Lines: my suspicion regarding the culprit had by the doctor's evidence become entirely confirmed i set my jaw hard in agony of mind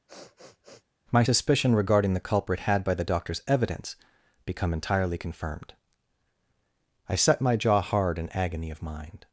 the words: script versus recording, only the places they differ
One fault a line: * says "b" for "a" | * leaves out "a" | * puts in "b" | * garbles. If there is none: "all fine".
all fine